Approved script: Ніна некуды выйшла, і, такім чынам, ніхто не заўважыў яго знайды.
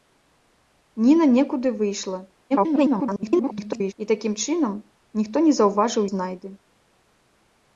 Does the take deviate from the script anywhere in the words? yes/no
yes